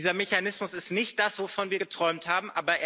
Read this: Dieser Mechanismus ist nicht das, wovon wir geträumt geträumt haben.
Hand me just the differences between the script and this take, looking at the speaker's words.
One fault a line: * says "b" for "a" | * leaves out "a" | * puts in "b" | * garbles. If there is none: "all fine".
* leaves out "geträumt"